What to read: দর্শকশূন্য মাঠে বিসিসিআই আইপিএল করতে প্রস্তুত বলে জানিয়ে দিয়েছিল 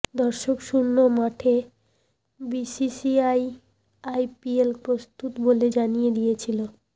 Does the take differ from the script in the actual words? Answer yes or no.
yes